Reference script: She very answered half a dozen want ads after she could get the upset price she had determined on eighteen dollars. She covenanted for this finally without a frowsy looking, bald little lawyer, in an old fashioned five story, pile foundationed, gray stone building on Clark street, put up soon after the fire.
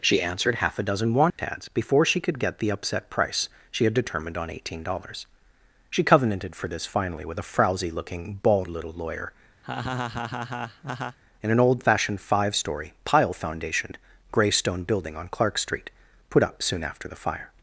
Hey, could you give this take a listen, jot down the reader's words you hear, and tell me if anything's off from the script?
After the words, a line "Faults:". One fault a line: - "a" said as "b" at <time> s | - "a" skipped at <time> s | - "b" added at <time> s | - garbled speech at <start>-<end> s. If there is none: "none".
She answered half a dozen want ads before she could get the upset price she had determined on eighteen dollars. She covenanted for this finally with a frowsy looking, bald little lawyer, in an old fashioned five story, pile foundationed, gray stone building on Clark street, put up soon after the fire.
Faults:
- "very" skipped at 0.2 s
- "after" said as "before" at 1.7 s
- "without" said as "with" at 7.3 s